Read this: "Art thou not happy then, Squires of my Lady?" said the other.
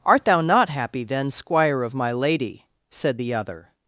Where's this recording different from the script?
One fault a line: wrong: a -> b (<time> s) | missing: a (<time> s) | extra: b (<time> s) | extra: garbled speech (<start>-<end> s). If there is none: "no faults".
wrong: Squires -> Squire (1.3 s)